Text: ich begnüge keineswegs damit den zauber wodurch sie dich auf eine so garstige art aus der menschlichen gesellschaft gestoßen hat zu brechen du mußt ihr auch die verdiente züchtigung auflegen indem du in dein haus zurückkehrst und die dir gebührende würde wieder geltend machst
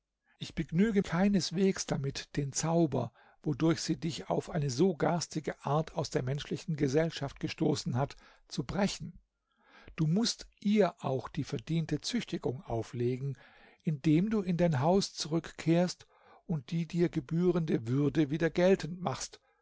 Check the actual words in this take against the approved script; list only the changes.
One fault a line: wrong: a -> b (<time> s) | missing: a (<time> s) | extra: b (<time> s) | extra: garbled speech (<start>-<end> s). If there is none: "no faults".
no faults